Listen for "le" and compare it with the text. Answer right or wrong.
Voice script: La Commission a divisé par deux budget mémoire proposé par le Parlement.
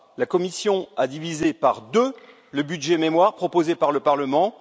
right